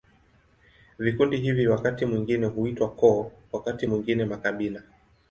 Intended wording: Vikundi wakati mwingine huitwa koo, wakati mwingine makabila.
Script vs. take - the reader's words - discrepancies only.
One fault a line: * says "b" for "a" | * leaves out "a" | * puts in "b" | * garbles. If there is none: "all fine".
* puts in "hivi"